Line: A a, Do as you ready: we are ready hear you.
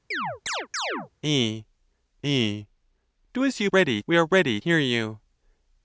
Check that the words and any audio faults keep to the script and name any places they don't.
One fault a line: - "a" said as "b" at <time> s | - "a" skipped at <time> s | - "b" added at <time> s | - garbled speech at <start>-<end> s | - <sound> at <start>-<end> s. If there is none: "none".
- chirp at 0.1-1.1 s